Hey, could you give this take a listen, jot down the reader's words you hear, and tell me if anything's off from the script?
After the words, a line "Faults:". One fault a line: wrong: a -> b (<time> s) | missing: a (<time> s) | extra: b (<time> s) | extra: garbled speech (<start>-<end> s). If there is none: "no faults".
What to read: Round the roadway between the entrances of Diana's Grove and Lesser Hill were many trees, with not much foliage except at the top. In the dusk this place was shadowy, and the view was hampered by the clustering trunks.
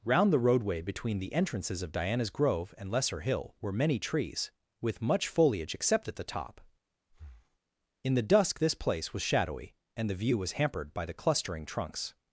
Round the roadway between the entrances of Diana's Grove and Lesser Hill were many trees, with much foliage except at the top. In the dusk this place was shadowy, and the view was hampered by the clustering trunks.
Faults:
missing: not (5.0 s)